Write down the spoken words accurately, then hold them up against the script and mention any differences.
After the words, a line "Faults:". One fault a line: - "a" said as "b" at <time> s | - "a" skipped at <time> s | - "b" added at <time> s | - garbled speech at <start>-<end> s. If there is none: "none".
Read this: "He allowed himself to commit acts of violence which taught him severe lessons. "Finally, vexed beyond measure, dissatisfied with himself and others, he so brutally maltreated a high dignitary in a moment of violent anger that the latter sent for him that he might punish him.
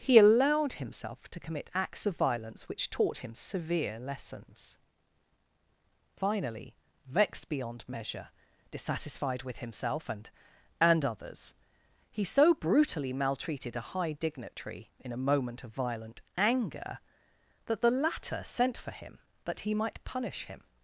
"He allowed himself to commit acts of violence which taught him severe lessons. "Finally, vexed beyond measure, dissatisfied with himself and and others, he so brutally maltreated a high dignitary in a moment of violent anger that the latter sent for him that he might punish him.
Faults:
- "and" added at 10.8 s